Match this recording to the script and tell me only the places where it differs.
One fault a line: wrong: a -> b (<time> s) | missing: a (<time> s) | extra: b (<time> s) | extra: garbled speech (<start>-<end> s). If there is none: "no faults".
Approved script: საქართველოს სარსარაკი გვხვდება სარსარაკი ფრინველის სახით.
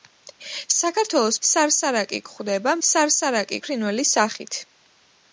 no faults